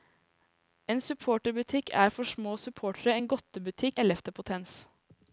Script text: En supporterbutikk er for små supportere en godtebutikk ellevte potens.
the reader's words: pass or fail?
pass